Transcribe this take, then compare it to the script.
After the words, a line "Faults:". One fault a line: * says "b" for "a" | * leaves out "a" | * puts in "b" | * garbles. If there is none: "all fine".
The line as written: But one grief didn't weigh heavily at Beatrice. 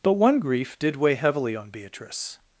But one grief did weigh heavily on Beatrice.
Faults:
* says "did" for "didn't"
* says "on" for "at"